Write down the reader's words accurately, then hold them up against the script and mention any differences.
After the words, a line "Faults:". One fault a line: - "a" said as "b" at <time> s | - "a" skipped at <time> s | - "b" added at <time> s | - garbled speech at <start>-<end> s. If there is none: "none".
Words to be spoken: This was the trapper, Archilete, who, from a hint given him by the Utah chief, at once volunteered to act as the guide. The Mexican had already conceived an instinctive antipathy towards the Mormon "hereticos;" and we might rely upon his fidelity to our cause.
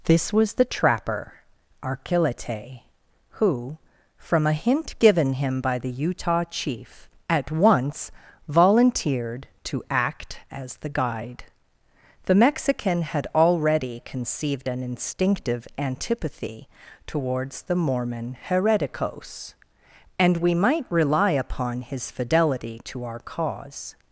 This was the trapper, Archilete, who, from a hint given him by the Utah chief, at once volunteered to act as the guide. The Mexican had already conceived an instinctive antipathy towards the Mormon "hereticos;" and we might rely upon his fidelity to our cause.
Faults:
none